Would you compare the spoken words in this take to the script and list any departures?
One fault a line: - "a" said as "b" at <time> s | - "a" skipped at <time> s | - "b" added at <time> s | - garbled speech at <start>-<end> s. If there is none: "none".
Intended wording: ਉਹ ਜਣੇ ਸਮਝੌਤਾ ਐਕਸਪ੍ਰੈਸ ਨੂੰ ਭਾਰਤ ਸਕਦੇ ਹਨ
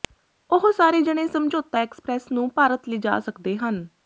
- "ਸਾਰੇ" added at 0.7 s
- "ਲਿਜਾ" added at 2.9 s